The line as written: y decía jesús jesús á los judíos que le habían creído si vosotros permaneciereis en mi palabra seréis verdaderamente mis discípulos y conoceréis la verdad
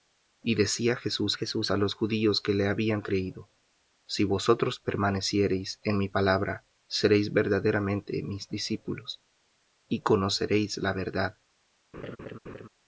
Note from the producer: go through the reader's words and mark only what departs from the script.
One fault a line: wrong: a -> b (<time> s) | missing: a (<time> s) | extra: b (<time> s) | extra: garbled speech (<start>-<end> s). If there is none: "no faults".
no faults